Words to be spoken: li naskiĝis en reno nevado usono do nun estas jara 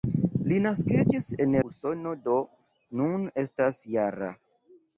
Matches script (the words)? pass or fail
fail